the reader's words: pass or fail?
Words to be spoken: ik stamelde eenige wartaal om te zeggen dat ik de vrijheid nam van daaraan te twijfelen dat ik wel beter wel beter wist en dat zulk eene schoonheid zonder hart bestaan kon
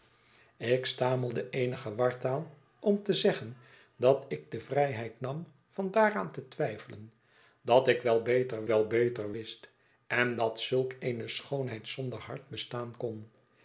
pass